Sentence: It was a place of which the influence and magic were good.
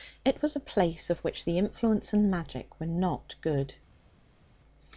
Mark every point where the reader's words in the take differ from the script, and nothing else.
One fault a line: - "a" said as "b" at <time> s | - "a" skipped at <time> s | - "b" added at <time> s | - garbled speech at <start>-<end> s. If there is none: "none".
- "not" added at 2.9 s